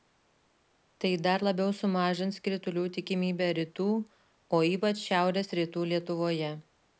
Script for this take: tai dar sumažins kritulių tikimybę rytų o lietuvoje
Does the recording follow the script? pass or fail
fail